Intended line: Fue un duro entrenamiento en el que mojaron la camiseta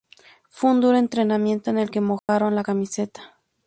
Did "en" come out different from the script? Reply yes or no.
no